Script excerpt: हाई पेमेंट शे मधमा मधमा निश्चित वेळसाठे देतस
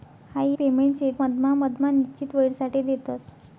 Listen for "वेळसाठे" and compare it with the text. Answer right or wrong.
right